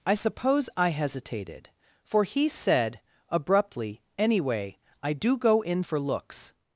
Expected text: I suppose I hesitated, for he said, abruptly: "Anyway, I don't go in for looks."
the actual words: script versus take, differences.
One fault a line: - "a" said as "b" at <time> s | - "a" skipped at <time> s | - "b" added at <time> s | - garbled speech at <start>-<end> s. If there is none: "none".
- "don't" said as "do" at 5.1 s